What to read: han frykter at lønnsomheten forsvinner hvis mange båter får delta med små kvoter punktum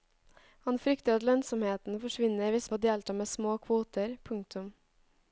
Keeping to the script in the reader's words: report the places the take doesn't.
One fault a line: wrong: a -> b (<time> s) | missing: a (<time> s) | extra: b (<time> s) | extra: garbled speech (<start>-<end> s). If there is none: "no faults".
missing: mange båter (2.7 s)